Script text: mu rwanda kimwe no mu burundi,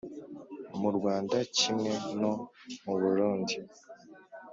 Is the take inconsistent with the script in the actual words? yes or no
no